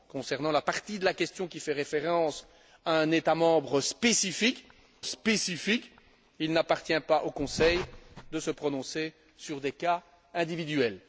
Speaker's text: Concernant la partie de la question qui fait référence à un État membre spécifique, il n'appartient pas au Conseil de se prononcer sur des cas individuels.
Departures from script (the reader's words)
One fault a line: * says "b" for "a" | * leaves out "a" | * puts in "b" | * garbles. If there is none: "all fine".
* puts in "spécifique"